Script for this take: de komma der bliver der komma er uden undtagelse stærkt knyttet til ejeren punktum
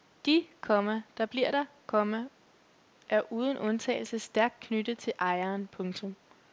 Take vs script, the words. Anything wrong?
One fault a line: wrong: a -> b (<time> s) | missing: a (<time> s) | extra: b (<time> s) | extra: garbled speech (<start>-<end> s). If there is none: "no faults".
no faults